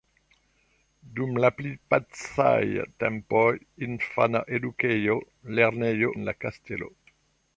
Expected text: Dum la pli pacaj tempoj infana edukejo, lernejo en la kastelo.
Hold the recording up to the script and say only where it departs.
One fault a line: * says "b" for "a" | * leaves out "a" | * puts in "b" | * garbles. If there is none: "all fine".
all fine